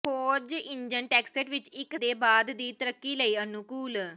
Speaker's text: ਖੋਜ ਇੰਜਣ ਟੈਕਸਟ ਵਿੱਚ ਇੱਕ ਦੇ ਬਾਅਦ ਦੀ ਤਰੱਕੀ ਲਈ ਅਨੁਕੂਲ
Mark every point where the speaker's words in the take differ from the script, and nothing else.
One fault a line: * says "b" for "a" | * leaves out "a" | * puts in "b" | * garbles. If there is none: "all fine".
all fine